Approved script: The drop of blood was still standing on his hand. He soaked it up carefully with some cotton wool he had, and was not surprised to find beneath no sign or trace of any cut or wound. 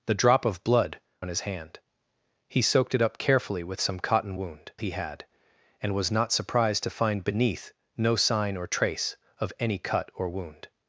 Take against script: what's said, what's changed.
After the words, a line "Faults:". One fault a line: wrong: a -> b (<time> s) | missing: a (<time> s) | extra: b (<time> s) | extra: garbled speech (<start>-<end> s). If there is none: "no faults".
The drop of blood on his hand. He soaked it up carefully with some cotton wound he had, and was not surprised to find beneath no sign or trace of any cut or wound.
Faults:
missing: was still standing (1.0 s)
wrong: wool -> wound (4.3 s)